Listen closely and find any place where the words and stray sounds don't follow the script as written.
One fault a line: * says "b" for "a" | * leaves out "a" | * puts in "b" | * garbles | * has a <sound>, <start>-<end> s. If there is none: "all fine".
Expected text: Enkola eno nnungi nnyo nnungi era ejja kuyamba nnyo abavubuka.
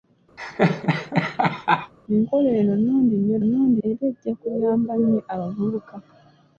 * has a laugh, 0.4-1.9 s